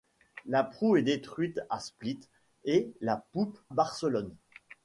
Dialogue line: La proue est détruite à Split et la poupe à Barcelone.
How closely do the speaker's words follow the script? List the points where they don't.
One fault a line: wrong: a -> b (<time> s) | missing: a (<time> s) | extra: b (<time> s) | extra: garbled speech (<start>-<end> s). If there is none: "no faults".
missing: à (3.6 s)